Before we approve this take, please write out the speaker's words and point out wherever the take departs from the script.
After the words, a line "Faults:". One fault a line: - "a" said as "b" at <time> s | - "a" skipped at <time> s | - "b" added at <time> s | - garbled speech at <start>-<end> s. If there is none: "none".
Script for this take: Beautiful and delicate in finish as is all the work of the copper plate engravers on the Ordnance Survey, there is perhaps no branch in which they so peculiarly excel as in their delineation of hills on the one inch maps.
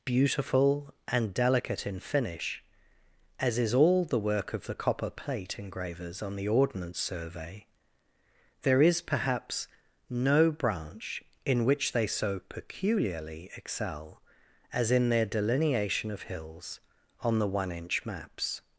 Beautiful and delicate in finish as is all the work of the copper plate engravers on the Ordnance Survey, there is perhaps no branch in which they so peculiarly excel as in their delineation of hills on the one inch maps.
Faults:
none